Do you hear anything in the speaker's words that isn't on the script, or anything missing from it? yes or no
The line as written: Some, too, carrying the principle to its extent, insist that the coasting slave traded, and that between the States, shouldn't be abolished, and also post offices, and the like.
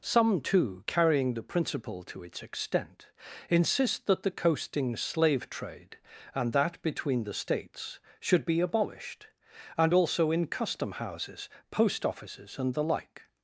yes